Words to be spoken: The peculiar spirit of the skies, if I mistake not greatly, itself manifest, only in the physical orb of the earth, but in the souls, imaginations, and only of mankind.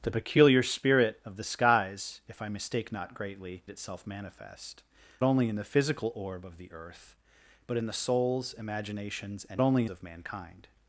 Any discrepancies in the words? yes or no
no